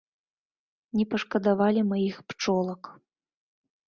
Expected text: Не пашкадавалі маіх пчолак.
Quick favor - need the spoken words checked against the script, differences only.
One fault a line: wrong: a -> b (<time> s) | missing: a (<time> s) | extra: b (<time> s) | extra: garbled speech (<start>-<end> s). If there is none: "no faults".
no faults